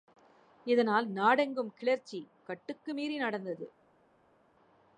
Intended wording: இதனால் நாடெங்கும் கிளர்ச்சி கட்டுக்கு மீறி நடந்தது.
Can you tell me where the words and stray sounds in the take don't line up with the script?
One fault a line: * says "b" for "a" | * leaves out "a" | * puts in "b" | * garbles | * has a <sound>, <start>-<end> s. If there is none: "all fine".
all fine